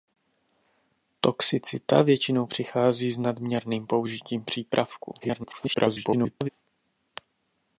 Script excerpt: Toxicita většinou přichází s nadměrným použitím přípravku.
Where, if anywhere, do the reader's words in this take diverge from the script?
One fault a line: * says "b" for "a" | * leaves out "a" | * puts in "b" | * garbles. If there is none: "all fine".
* garbles